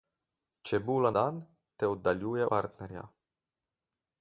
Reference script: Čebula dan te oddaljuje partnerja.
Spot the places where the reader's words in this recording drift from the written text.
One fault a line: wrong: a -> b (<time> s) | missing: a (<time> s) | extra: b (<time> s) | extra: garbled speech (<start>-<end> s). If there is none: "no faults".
no faults